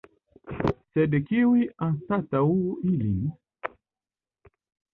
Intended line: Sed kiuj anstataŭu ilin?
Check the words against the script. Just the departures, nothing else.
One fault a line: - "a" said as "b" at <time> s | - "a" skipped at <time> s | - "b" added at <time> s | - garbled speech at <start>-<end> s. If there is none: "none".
none